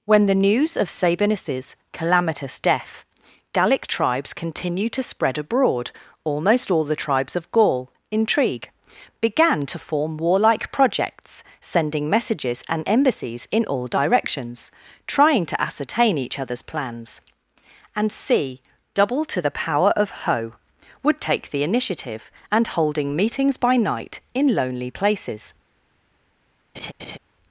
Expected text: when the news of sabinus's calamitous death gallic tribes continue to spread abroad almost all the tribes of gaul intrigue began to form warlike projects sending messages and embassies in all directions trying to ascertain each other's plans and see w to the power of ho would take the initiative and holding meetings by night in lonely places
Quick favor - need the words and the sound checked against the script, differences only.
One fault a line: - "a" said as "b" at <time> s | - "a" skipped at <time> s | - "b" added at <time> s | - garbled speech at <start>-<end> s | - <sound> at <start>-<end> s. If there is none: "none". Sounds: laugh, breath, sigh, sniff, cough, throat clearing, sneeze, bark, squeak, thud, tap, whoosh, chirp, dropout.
- "see w" said as "c double" at 18.1 s
- laugh at 26.7-27.2 s